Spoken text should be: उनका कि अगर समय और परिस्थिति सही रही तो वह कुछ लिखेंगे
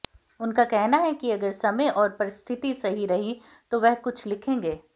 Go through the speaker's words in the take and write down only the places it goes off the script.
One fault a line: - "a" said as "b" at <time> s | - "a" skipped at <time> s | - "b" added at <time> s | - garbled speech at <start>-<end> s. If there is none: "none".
- "कहना है" added at 0.7 s